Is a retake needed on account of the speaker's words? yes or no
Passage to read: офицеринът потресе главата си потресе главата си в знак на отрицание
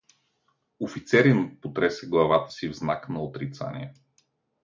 yes